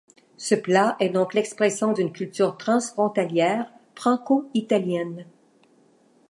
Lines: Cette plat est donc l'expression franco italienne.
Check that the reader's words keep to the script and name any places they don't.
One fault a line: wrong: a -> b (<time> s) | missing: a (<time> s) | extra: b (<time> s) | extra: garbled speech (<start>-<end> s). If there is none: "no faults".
wrong: Cette -> Ce (0.3 s)
extra: d'une culture transfrontalière (1.9 s)